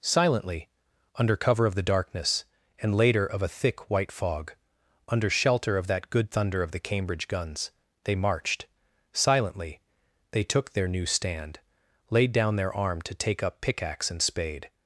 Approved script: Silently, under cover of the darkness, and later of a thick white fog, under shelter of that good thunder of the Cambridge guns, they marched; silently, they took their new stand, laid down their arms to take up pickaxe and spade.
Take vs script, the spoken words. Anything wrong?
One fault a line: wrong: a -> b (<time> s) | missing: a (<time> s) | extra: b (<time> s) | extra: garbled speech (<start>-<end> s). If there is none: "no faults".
wrong: arms -> arm (12.7 s)